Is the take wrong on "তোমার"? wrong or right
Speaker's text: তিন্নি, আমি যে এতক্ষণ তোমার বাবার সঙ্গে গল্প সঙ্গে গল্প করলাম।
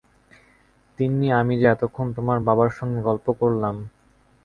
right